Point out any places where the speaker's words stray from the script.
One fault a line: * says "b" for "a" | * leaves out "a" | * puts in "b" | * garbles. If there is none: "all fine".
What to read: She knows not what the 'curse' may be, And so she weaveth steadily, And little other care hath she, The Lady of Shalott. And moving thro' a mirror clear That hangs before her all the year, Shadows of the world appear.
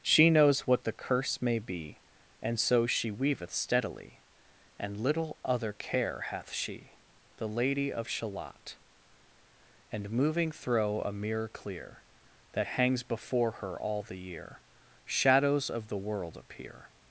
* leaves out "not"